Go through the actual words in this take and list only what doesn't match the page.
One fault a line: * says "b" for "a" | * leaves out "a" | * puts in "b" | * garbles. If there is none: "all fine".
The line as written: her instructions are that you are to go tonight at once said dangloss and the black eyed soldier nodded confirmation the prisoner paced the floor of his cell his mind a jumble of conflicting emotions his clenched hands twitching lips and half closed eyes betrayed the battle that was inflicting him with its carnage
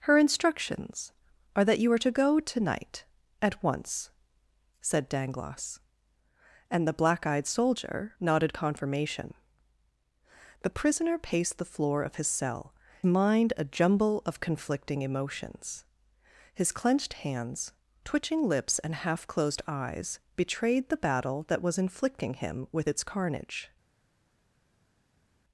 * leaves out "his"